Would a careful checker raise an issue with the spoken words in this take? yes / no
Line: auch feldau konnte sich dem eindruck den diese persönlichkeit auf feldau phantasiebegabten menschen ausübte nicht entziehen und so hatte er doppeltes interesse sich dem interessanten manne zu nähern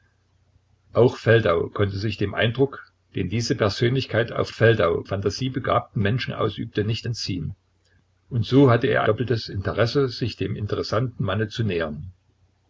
no